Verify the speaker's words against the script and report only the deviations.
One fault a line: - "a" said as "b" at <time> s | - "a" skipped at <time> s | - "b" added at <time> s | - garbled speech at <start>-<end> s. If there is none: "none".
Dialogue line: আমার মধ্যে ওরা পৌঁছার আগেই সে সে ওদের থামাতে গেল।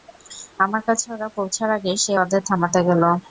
- "মধ্যে" said as "কাছে" at 0.9 s
- "সে" skipped at 2.1 s